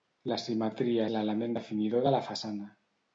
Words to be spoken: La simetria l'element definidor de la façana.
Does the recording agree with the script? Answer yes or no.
yes